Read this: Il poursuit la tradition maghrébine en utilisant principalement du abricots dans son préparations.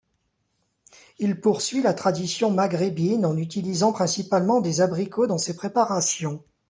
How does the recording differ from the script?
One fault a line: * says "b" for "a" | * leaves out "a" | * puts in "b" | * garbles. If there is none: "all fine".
* says "des" for "du"
* says "ses" for "son"